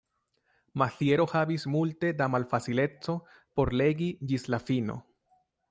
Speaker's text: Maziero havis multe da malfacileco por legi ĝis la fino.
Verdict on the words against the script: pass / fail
pass